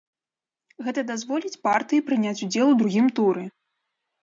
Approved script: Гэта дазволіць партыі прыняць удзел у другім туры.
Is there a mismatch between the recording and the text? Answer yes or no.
no